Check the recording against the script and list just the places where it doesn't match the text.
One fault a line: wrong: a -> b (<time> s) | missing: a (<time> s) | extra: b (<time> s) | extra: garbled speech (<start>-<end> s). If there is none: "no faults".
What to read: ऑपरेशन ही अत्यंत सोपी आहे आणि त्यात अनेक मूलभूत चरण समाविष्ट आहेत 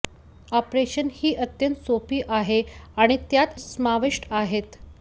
missing: अनेक मूलभूत चरण (3.6 s)